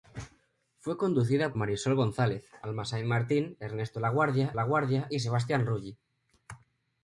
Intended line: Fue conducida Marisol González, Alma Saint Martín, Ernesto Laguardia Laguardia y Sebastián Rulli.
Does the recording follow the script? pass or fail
pass